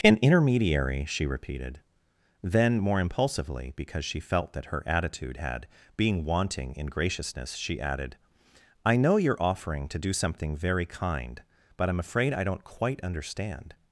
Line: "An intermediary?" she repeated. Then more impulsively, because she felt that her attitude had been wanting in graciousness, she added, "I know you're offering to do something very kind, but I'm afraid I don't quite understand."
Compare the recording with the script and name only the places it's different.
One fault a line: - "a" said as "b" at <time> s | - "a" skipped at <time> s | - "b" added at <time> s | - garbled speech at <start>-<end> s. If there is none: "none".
- "been" said as "being" at 6.0 s